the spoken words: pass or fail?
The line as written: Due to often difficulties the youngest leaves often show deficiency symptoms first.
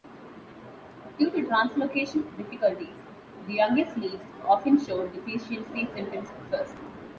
fail